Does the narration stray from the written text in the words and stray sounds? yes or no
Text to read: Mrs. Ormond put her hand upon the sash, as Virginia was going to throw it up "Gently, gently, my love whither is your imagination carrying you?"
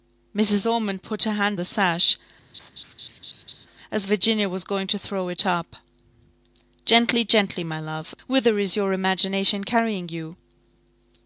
yes